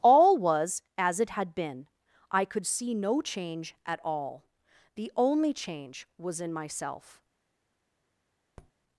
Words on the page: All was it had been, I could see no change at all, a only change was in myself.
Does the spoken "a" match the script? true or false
false